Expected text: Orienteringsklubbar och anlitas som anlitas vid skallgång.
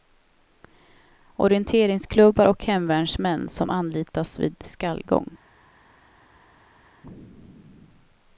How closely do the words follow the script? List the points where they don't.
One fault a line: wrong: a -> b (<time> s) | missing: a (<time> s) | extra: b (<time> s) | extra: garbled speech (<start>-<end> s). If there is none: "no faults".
wrong: anlitas -> hemvärnsmän (2.6 s)